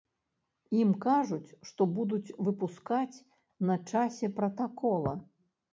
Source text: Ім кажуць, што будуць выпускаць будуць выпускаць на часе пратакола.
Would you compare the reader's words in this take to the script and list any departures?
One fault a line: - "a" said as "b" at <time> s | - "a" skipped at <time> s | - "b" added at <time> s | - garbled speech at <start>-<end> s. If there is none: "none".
- "будуць выпускаць" skipped at 3.2 s